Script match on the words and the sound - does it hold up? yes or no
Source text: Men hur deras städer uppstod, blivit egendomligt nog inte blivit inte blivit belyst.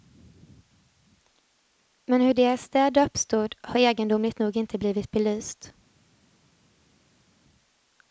no